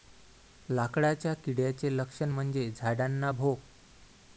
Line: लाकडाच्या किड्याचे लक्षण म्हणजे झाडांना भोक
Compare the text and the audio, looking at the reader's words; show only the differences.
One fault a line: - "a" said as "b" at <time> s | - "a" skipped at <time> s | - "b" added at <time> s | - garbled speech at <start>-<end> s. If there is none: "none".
none